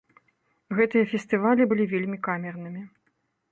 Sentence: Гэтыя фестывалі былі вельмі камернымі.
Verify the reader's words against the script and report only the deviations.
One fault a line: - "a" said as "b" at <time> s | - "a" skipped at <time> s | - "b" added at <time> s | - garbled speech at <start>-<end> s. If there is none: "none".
none